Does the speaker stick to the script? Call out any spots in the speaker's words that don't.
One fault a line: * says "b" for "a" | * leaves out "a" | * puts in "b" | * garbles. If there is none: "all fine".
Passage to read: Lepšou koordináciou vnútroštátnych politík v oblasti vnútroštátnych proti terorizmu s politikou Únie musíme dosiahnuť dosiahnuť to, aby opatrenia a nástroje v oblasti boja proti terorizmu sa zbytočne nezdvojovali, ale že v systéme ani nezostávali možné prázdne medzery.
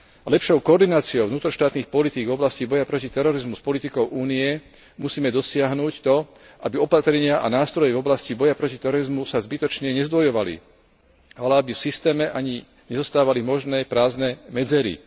* says "boja" for "vnútroštátnych"
* leaves out "dosiahnuť"
* says "aby" for "že"